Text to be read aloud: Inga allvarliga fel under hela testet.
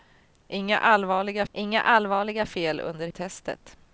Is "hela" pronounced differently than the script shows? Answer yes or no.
yes